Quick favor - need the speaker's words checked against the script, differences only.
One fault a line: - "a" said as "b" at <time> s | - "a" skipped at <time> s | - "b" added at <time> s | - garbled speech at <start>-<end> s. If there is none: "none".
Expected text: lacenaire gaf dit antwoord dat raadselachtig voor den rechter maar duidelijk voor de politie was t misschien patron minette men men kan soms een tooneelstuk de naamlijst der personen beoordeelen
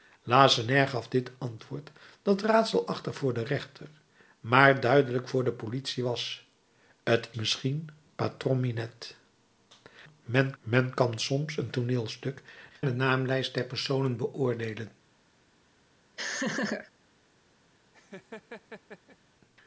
none